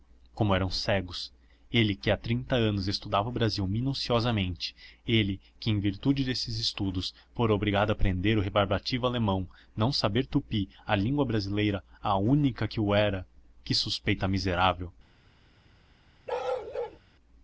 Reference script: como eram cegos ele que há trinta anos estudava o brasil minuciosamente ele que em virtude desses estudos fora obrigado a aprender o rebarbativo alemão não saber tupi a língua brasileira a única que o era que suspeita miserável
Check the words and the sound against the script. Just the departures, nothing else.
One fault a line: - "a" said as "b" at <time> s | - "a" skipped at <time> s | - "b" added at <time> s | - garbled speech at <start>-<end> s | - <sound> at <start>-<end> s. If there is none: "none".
- bark at 16.3-17.0 s